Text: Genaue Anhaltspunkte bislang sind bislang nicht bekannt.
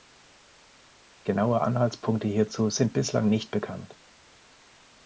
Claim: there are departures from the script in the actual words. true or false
true